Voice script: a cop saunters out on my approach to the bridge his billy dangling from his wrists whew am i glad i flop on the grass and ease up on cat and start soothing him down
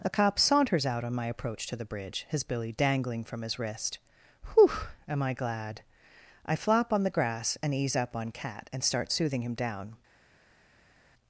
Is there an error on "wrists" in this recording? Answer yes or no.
yes